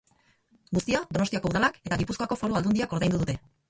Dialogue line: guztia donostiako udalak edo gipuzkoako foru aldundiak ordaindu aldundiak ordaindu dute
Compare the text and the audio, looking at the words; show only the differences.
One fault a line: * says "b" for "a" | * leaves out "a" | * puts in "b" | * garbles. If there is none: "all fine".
* says "eta" for "edo"
* leaves out "aldundiak ordaindu"